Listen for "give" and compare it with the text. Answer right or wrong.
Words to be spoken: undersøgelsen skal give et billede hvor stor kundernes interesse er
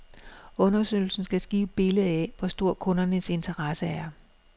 right